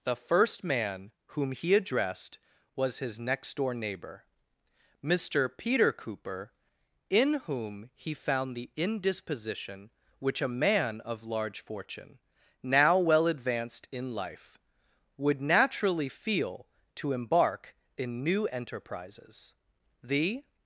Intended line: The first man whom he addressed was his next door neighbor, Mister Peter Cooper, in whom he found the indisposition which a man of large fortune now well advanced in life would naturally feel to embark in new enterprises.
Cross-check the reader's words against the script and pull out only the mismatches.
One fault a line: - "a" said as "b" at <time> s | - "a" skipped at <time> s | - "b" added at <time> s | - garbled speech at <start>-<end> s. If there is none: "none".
- "The" added at 20.0 s